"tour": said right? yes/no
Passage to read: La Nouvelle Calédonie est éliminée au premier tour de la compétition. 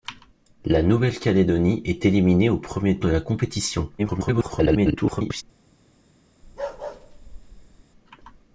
no